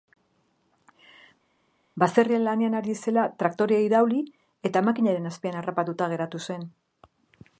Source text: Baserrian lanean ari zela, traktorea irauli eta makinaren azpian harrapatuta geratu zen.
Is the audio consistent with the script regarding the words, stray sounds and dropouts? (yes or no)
yes